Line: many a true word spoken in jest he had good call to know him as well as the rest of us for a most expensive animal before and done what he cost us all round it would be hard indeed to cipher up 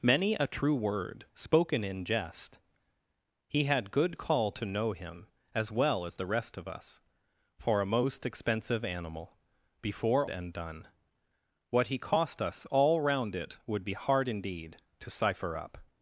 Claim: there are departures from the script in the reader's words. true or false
false